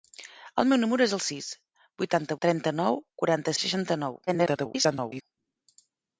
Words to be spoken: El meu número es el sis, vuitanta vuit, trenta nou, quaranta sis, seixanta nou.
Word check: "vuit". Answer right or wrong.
wrong